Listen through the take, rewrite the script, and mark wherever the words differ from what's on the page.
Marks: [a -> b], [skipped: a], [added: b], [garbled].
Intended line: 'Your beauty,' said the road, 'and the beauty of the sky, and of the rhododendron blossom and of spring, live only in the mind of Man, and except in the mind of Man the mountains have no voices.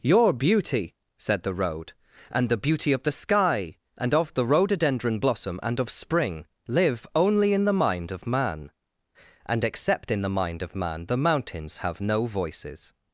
'Your beauty,' said the road, 'and the beauty of the sky, and of the rhododendron blossom and of spring, live only in the mind of Man, and except in the mind of Man the mountains have no voices.